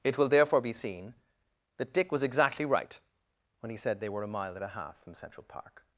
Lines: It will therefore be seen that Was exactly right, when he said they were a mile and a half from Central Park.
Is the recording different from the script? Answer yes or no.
yes